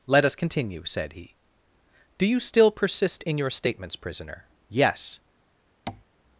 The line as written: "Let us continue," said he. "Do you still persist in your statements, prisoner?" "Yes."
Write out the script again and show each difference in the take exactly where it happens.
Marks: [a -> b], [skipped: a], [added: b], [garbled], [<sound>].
"Let us continue," said he. "Do you still persist in your statements, prisoner?" "Yes." [tap]